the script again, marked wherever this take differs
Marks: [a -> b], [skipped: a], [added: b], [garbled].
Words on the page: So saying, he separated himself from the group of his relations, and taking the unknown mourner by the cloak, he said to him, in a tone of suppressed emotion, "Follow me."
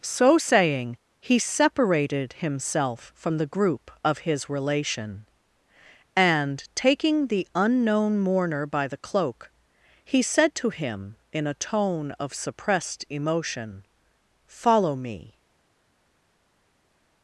So saying, he separated himself from the group of his [relations, -> relation] and taking the unknown mourner by the cloak, he said to him, in a tone of suppressed emotion, "Follow me."